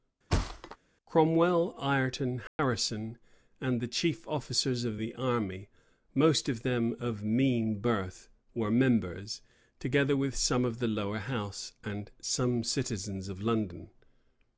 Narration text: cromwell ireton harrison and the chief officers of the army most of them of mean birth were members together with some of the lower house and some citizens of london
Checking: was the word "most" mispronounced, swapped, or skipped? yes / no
no